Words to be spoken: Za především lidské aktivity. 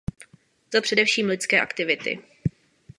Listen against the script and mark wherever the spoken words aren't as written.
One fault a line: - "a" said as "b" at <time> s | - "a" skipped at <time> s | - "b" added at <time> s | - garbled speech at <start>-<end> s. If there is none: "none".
none